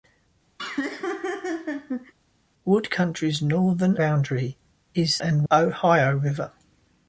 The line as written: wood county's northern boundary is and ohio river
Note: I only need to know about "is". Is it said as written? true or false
true